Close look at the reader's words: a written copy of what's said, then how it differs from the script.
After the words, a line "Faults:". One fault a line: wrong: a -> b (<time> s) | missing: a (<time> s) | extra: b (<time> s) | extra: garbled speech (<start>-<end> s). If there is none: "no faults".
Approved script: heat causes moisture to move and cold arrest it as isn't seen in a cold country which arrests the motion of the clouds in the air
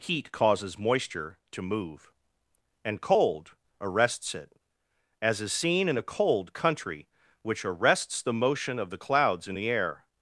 heat causes moisture to move and cold arrests it as is seen in a cold country which arrests the motion of the clouds in the air
Faults:
wrong: arrest -> arrests (3.8 s)
wrong: isn't -> is (5.4 s)